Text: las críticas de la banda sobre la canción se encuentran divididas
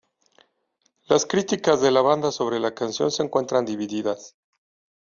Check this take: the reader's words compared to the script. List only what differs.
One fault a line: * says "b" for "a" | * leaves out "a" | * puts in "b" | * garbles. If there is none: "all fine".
all fine